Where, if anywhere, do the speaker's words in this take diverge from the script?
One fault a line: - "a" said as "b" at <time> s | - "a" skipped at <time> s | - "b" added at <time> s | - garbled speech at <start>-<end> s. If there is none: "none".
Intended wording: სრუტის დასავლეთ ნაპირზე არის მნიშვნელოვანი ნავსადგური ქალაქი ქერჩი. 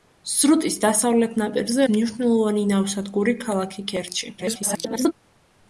- "არის" skipped at 1.9 s
- garbled speech at 4.4-5.1 s